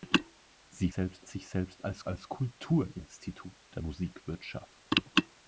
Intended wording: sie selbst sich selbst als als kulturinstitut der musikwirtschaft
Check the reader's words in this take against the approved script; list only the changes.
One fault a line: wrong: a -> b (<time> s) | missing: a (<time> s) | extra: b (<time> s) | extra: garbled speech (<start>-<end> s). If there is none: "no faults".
no faults